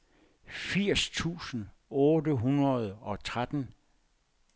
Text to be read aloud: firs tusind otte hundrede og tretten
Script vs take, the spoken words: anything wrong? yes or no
no